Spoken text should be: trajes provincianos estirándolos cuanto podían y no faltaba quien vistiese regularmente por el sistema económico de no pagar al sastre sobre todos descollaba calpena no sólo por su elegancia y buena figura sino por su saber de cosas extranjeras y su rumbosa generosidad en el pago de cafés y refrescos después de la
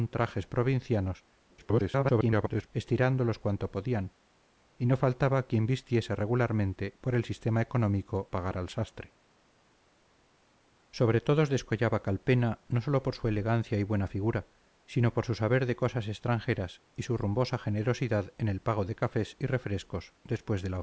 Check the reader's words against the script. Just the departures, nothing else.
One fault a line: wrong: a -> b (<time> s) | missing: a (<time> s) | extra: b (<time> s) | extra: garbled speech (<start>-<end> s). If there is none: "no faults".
extra: garbled speech (1.5-2.7 s)
missing: de no (8.3 s)